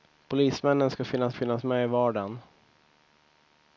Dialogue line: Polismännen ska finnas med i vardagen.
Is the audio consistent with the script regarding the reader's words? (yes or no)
no